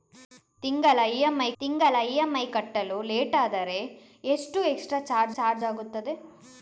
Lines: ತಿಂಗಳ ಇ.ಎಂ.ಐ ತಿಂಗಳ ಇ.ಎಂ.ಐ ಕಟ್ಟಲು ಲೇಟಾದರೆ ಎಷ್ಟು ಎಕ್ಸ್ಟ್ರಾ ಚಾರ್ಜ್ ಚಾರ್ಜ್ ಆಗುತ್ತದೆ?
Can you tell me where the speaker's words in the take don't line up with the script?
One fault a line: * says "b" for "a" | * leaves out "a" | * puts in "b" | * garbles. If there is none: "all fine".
all fine